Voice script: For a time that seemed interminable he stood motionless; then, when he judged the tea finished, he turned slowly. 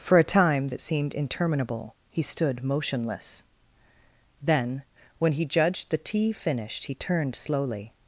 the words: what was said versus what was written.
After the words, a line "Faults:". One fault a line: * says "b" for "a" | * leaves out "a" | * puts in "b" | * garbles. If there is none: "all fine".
For a time that seemed interminable he stood motionless; then, when he judged the tea finished, he turned slowly.
Faults:
all fine